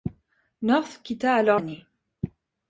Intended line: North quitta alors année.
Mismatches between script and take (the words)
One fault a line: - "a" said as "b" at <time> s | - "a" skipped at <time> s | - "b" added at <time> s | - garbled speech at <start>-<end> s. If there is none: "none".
none